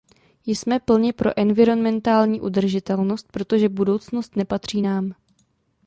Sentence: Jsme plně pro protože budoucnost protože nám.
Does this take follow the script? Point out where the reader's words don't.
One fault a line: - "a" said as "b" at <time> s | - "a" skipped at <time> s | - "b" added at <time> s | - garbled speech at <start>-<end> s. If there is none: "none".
- "environmentální udržitelnost" added at 1.4 s
- "protože" said as "nepatří" at 4.3 s